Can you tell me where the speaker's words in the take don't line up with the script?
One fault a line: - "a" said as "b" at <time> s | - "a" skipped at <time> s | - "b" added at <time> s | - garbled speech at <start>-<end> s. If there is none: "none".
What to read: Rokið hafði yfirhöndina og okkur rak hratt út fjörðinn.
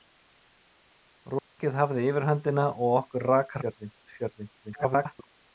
- "hratt" said as "fjörðinn" at 3.6 s
- garbled speech at 4.6-5.3 s